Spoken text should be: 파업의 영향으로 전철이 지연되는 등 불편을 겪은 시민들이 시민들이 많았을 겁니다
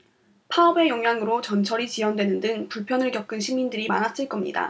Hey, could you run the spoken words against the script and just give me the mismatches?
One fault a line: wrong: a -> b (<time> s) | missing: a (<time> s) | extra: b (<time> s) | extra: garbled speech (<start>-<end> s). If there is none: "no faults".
missing: 시민들이 (3.9 s)